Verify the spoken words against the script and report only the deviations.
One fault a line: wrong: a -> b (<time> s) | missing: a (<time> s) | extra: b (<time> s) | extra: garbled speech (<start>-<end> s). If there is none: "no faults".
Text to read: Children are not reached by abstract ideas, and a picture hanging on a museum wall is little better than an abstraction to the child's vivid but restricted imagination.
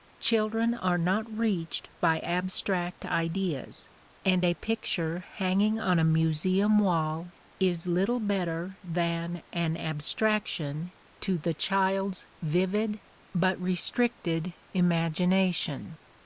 no faults